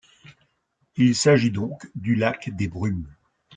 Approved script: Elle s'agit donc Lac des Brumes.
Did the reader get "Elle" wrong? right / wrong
wrong